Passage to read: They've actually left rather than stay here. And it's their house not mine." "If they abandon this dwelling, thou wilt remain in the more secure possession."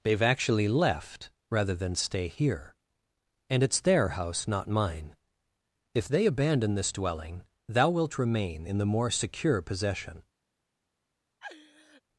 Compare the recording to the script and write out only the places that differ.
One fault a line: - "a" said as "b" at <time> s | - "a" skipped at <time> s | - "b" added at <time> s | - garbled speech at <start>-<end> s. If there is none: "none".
none